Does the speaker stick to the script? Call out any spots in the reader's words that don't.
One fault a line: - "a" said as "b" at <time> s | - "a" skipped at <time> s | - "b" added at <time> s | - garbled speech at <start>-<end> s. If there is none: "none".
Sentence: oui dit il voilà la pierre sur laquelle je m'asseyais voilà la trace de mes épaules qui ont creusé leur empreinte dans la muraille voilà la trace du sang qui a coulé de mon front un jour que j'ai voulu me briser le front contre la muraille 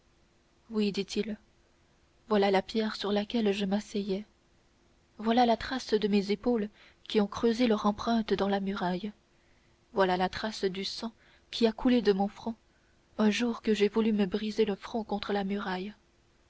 none